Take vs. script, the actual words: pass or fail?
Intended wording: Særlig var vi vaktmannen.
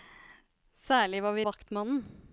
pass